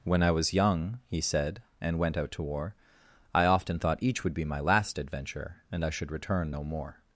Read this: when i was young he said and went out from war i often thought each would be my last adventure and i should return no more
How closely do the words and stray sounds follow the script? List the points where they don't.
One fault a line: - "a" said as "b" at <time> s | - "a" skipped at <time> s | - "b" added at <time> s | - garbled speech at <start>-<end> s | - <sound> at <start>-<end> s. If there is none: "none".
- "from" said as "to" at 2.3 s